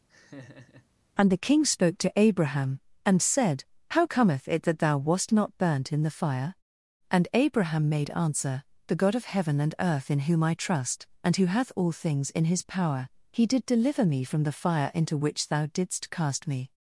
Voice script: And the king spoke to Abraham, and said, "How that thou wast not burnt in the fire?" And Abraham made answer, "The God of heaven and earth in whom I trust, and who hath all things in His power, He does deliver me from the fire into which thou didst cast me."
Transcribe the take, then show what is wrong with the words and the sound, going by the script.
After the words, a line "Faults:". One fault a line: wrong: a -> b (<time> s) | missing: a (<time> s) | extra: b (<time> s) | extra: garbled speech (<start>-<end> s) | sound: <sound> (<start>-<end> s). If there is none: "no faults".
And the king spoke to Abraham, and said, "How cometh it that thou wast not burnt in the fire?" And Abraham made answer, "The God of heaven and earth in whom I trust, and who hath all things in His power, He did deliver me from the fire into which thou didst cast me."
Faults:
sound: laugh (0.1-0.9 s)
extra: cometh it (4.0 s)
wrong: does -> did (13.4 s)